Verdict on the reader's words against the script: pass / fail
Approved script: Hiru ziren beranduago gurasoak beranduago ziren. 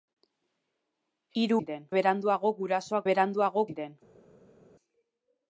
pass